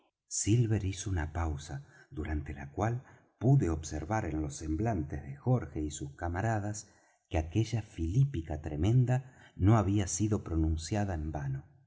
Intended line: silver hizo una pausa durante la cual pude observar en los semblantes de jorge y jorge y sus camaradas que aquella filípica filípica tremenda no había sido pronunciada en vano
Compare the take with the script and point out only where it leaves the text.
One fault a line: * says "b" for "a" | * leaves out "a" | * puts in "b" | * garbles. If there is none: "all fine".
* leaves out "jorge y"
* leaves out "filípica"